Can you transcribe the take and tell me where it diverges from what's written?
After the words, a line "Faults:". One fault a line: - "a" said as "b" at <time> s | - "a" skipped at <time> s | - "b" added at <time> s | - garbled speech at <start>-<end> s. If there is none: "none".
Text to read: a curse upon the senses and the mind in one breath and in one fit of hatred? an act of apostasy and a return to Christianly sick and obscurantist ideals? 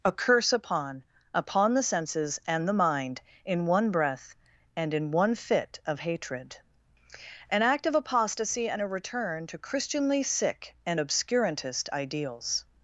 a curse upon upon the senses and the mind in one breath and in one fit of hatred? an act of apostasy and a return to Christianly sick and obscurantist ideals?
Faults:
- "upon" added at 1.3 s